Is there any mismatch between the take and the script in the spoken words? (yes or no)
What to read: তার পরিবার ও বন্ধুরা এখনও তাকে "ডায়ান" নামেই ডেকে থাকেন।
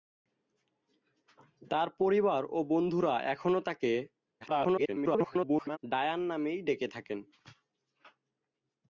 yes